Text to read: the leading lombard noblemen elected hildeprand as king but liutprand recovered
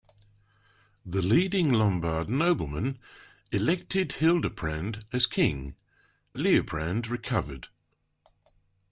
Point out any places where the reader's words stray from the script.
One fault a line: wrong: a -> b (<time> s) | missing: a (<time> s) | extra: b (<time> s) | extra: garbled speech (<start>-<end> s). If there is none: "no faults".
missing: but (5.8 s)